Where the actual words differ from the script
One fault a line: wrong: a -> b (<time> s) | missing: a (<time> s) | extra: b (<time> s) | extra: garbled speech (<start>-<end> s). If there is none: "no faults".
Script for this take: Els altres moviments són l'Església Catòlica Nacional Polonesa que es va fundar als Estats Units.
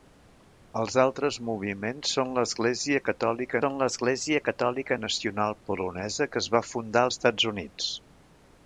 extra: són l'Església Catòlica (3.6 s)
missing: als (7.0 s)